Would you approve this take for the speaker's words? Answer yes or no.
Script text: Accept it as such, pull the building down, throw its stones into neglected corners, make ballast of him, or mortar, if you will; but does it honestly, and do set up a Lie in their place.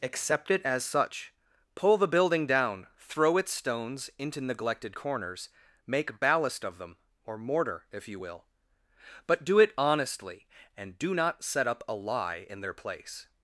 no